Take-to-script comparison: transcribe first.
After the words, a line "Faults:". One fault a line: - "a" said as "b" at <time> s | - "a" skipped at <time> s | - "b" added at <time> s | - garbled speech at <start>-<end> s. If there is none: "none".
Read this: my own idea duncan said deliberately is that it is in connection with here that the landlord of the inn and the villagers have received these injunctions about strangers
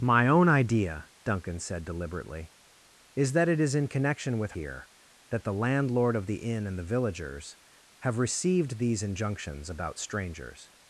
my own idea duncan said deliberately is that it is in connection with here that the landlord of the inn and the villagers have received these injunctions about strangers
Faults:
none